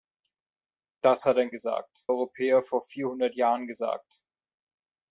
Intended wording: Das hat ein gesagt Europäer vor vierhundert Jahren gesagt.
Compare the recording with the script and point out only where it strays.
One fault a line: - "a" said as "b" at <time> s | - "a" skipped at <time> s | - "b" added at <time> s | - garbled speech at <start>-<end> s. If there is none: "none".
none